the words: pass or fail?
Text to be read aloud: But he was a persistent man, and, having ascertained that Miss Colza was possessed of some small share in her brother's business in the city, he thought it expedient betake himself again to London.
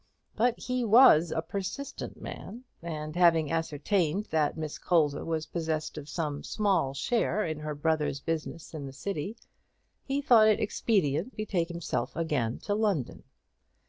pass